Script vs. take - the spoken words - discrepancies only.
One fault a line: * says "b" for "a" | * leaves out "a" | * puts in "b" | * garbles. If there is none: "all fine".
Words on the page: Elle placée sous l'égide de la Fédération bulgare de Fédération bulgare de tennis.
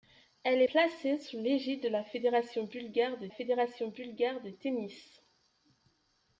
all fine